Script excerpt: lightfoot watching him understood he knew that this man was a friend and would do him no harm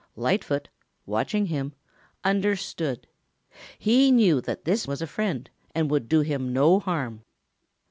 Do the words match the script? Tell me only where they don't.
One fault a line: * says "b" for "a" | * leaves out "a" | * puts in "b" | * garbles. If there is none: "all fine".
* leaves out "man"